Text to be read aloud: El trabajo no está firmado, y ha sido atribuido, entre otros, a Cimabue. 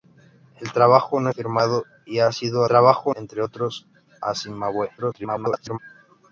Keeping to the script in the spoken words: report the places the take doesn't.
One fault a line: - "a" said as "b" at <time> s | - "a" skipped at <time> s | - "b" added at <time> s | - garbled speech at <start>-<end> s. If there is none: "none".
- "está" skipped at 1.3 s
- "atribuido" said as "trabajo" at 2.6 s
- garbled speech at 5.0-5.8 s